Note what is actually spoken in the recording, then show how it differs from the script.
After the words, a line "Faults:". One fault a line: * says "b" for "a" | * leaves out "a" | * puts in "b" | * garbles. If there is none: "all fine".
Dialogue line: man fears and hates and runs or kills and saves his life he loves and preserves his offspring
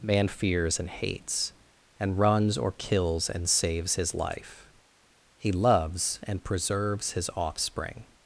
man fears and hates and runs or kills and saves his life he loves and preserves his offspring
Faults:
all fine